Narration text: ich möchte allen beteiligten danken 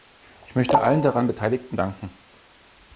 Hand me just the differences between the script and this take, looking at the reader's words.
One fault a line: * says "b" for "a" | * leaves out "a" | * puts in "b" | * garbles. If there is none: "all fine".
* puts in "daran"